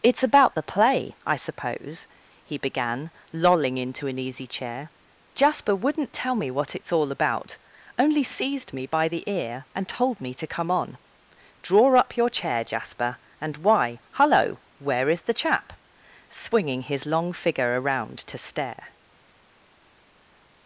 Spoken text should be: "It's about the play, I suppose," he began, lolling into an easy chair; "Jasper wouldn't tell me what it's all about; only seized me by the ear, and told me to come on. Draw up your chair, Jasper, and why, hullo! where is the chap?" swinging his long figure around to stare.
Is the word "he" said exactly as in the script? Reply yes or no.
yes